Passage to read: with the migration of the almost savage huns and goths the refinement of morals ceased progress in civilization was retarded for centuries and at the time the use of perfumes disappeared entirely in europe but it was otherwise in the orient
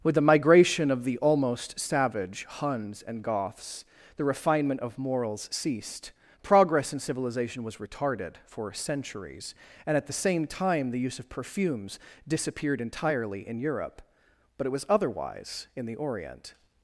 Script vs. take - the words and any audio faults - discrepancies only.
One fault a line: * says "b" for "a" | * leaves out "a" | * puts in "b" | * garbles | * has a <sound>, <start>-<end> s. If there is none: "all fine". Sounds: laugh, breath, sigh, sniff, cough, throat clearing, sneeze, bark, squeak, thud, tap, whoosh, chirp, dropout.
* puts in "same"